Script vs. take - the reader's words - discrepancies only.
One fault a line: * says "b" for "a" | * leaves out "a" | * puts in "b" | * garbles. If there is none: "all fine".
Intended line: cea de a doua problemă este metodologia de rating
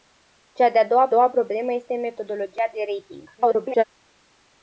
* puts in "doua"
* garbles